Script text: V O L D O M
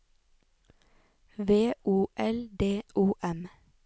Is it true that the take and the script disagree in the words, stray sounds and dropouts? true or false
false